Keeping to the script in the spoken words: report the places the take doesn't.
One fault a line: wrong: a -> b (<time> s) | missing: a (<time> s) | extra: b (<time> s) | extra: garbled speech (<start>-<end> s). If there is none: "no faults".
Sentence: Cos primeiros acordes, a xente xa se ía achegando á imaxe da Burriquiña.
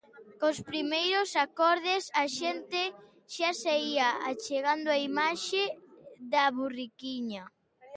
no faults